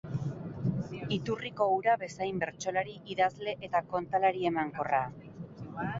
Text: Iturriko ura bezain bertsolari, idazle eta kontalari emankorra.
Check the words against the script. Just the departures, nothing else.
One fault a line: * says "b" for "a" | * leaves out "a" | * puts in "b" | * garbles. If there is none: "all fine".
all fine